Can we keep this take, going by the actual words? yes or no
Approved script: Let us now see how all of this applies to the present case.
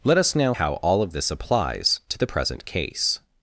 no